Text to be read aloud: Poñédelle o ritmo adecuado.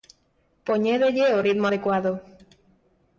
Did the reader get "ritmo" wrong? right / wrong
right